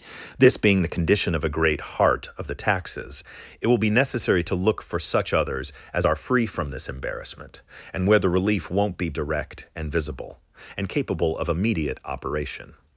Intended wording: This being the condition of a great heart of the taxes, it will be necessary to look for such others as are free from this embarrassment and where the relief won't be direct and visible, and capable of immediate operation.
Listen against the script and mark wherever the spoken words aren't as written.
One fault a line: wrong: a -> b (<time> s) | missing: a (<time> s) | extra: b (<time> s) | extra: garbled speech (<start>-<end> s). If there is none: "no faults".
no faults